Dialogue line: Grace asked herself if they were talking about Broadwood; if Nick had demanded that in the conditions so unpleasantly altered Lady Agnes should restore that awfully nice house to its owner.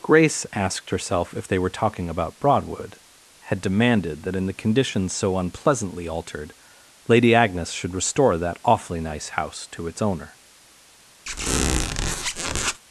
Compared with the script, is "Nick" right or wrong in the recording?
wrong